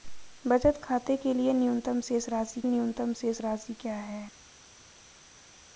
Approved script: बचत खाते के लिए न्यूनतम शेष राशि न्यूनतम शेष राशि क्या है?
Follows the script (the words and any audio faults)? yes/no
yes